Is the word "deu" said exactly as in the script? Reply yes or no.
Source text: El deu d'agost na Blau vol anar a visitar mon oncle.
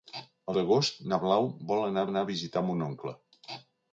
no